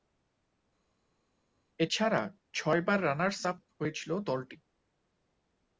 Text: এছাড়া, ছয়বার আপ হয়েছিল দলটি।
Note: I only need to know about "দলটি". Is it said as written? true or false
true